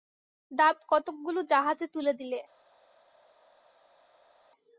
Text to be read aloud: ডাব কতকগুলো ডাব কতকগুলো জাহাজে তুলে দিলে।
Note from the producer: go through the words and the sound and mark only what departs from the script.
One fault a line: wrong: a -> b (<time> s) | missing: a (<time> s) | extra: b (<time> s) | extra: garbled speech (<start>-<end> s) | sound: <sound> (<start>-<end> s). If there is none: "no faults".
missing: ডাব কতকগুলো (1.4 s)